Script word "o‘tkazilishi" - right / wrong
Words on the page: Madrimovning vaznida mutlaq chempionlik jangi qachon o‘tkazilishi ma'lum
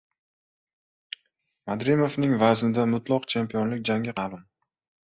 wrong